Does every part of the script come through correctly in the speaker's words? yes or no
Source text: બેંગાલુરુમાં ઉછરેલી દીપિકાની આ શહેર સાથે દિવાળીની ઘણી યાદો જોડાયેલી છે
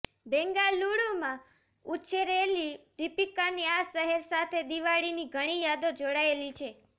yes